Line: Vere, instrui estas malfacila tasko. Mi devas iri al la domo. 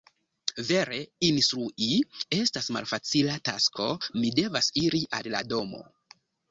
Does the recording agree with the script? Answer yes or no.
yes